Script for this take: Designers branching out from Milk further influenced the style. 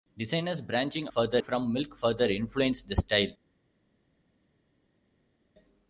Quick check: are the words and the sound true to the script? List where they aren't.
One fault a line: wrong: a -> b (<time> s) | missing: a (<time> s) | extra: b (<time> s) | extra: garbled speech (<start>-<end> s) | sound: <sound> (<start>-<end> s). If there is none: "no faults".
wrong: out -> further (1.1 s)